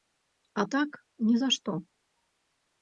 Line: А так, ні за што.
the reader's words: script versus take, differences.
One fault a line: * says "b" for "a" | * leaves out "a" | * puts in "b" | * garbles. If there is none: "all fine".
all fine